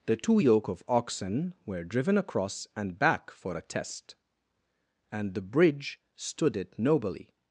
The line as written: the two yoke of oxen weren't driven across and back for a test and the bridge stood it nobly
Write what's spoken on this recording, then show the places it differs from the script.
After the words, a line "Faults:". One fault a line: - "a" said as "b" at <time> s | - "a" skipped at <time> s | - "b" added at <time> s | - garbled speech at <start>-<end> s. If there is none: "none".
the two yoke of oxen were driven across and back for a test and the bridge stood it nobly
Faults:
- "weren't" said as "were" at 1.7 s